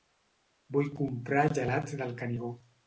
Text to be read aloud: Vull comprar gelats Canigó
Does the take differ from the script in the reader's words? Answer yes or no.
yes